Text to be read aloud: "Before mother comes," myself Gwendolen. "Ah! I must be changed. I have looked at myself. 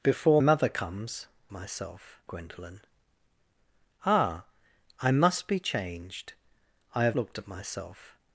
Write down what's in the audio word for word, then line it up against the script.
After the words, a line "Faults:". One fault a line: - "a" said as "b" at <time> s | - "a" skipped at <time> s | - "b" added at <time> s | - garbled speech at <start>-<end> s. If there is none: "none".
"Before mother comes," myself Gwendolen. "Ah! I must be changed. I have looked at myself.
Faults:
none